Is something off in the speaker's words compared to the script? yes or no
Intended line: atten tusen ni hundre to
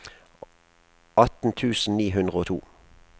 yes